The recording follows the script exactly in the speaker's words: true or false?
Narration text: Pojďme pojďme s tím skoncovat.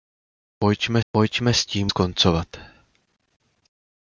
true